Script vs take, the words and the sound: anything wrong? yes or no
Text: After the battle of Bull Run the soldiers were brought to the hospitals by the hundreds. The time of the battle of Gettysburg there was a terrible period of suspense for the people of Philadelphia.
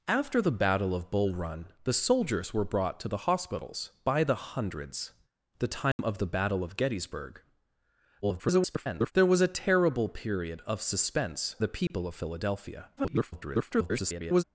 yes